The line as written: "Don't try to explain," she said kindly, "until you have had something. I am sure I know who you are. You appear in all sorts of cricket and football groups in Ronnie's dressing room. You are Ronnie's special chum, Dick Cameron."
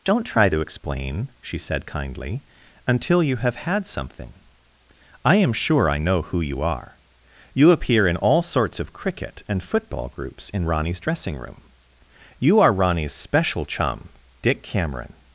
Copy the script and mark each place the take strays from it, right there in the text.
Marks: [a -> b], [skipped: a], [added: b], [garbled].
"Don't try to explain," she said kindly, "until you have had something. I am sure I know who you are. You appear in all sorts of cricket and football groups in Ronnie's dressing room. You are Ronnie's special chum, Dick Cameron."